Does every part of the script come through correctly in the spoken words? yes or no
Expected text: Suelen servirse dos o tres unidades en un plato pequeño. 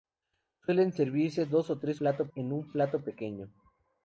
no